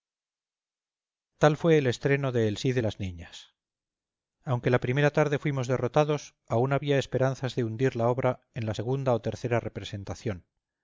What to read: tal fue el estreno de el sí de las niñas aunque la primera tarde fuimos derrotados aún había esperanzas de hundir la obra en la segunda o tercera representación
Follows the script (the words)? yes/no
yes